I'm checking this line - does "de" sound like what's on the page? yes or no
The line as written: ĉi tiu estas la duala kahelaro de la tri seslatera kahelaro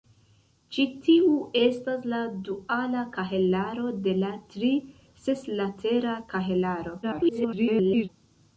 yes